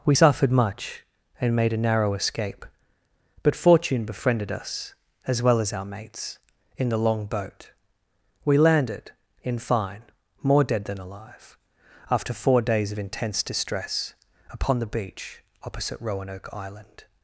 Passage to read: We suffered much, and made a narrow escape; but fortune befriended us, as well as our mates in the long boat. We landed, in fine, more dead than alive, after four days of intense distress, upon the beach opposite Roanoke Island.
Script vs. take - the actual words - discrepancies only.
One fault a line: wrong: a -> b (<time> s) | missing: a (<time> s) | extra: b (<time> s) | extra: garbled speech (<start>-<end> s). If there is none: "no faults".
no faults